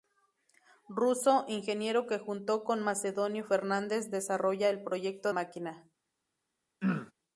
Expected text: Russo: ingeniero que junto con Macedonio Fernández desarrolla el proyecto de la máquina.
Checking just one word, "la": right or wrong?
wrong